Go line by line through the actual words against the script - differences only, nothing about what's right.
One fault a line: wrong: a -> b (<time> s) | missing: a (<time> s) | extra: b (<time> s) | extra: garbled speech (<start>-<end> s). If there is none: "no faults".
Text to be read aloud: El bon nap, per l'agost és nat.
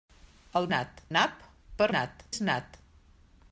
wrong: bon -> nat (0.7 s)
wrong: l'agost -> nat (2.0 s)